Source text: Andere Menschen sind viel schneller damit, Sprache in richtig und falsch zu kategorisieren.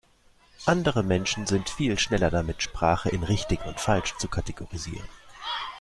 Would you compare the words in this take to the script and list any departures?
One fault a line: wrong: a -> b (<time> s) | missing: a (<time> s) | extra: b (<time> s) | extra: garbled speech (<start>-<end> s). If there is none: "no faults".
no faults